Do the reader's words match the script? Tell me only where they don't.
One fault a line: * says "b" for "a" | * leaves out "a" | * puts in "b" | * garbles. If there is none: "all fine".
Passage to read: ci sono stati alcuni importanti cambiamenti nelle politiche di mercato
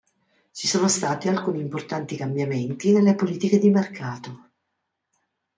all fine